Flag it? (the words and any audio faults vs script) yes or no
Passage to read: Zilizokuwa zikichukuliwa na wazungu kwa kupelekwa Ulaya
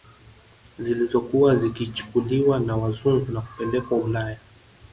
yes